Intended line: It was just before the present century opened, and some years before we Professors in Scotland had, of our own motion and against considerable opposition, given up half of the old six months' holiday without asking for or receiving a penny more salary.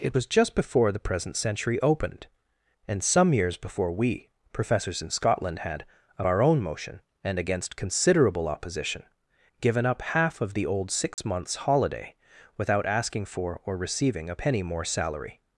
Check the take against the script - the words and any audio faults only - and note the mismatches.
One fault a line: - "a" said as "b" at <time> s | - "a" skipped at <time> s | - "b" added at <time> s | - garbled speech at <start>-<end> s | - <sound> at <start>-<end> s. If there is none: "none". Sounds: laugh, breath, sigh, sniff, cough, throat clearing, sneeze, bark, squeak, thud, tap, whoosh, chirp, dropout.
- dropout at 11.1-11.2 s